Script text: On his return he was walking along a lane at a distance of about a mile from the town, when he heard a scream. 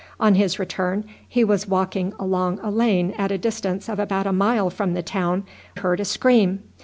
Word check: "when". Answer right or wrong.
wrong